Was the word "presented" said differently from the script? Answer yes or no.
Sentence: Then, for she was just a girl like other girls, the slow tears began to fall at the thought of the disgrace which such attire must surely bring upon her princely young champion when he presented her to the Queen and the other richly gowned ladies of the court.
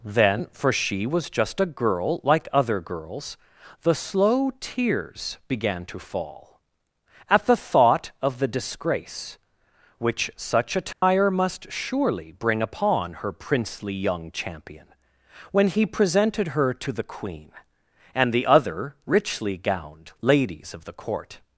no